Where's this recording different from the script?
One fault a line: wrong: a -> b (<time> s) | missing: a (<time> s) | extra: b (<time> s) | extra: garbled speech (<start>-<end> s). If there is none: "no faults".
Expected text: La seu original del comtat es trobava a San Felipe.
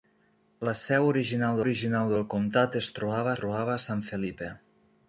extra: original (1.6 s)
extra: trobava (3.4 s)